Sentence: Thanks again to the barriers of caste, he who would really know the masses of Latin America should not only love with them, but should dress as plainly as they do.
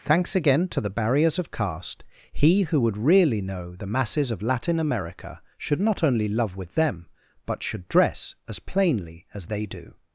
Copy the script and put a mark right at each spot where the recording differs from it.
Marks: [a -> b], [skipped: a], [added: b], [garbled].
Thanks again to the barriers of caste, he who would really know the masses of Latin America should not only love with them, but should dress as plainly as they do.